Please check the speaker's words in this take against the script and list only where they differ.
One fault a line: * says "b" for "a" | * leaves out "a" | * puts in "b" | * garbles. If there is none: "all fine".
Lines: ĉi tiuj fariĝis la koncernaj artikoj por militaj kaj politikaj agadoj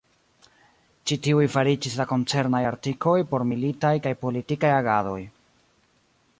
all fine